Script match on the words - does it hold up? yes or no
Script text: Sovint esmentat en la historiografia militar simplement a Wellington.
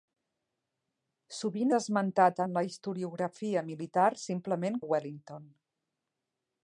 yes